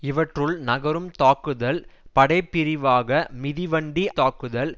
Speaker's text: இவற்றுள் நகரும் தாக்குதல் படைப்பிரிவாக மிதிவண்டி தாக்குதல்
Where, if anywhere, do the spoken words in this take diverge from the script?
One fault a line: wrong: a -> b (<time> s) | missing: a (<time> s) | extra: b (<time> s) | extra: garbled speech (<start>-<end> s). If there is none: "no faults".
no faults